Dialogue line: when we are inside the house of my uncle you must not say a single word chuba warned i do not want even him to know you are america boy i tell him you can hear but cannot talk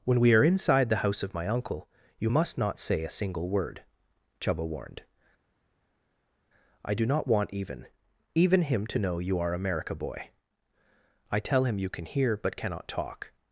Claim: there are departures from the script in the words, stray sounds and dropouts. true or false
true